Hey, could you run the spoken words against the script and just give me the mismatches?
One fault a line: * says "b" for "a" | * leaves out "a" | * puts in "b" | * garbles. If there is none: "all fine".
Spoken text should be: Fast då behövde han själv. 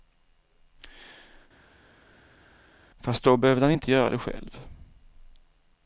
* puts in "inte göra det"